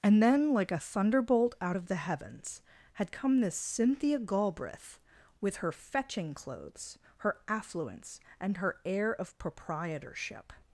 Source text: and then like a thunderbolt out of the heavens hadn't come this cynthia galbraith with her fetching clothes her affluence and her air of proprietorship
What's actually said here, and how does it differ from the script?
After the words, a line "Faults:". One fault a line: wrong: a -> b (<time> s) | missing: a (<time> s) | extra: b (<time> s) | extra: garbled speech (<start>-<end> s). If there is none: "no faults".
and then like a thunderbolt out of the heavens had come this cynthia galbraith with her fetching clothes her affluence and her air of proprietorship
Faults:
wrong: hadn't -> had (2.9 s)